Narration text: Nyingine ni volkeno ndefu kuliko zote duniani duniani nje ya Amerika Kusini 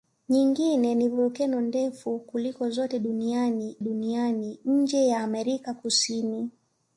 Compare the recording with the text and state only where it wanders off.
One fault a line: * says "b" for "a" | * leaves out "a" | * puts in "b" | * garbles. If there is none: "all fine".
all fine